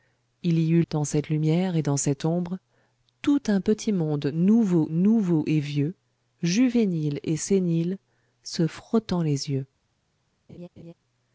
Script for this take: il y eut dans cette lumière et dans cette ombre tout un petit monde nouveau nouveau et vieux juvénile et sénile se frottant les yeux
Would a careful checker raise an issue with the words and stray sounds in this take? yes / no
yes